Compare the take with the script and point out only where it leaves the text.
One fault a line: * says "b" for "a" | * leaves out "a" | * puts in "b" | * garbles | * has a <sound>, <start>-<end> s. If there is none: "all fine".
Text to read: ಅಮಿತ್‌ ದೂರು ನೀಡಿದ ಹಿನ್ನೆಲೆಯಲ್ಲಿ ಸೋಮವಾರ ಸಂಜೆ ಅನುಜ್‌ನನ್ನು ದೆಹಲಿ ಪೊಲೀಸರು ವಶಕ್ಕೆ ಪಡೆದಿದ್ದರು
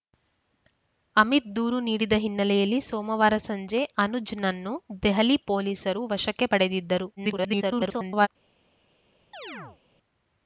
* garbles
* has a chirp, 9.3-9.8 s